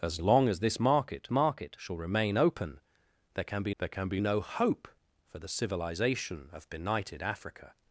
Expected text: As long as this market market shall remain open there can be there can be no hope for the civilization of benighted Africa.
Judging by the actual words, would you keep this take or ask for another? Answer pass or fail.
pass